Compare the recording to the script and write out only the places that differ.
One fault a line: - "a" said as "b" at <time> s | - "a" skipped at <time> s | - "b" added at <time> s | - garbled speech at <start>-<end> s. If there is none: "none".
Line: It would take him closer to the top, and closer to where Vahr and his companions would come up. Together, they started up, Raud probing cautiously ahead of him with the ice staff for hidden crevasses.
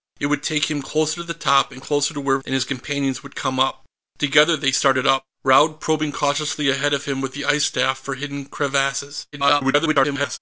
- "Vahr" skipped at 2.4 s
- garbled speech at 9.3-10.4 s